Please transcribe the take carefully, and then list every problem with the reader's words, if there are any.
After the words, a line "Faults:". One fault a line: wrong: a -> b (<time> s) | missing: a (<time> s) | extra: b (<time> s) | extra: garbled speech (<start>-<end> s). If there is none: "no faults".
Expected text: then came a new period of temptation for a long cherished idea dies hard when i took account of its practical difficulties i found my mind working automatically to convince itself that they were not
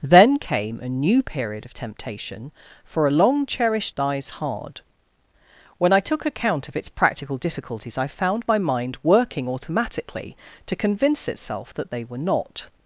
then came a new period of temptation for a long cherished dies hard when i took account of its practical difficulties i found my mind working automatically to convince itself that they were not
Faults:
missing: idea (4.0 s)